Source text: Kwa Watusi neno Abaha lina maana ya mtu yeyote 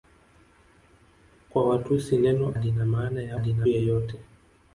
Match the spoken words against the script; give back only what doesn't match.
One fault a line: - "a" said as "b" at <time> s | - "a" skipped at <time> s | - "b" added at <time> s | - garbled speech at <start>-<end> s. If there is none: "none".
- "Abaha" skipped at 2.5 s
- "mtu" said as "lina" at 3.4 s